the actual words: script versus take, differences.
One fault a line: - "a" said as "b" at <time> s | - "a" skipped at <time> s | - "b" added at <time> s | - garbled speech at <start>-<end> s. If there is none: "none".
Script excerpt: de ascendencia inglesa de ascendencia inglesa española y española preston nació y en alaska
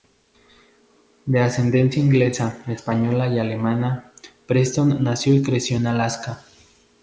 - "de ascendencia inglesa" skipped at 2.6 s
- "española" said as "alemana" at 3.4 s
- "creció" added at 5.4 s